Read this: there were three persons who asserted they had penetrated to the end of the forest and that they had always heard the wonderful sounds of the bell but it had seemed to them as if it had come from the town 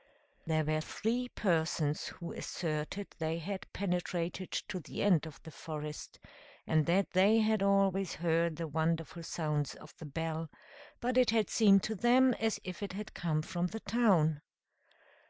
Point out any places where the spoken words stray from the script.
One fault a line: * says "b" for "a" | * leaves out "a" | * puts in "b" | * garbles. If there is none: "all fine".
all fine